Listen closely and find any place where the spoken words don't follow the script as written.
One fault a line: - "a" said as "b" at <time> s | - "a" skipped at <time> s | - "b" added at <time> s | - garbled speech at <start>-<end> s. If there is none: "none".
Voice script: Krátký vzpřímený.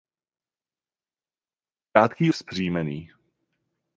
none